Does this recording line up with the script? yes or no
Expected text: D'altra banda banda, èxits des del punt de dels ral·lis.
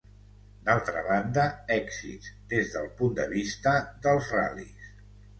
no